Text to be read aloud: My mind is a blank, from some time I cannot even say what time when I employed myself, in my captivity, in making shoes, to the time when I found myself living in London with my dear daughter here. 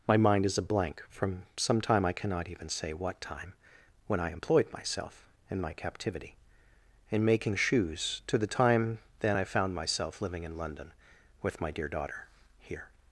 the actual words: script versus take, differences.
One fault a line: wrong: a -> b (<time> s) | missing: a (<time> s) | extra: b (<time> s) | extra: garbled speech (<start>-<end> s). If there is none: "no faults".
wrong: when -> then (9.2 s)